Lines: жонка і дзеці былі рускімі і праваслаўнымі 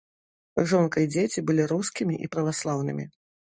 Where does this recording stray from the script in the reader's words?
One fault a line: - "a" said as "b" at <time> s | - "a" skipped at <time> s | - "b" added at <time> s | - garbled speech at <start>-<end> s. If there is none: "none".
none